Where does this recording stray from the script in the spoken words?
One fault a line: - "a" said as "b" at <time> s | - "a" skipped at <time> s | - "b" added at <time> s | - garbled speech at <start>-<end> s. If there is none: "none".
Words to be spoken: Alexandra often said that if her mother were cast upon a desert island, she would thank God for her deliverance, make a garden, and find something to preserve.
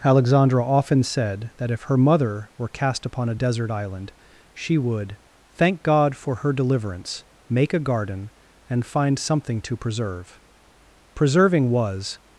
- "Preserving was" added at 11.1 s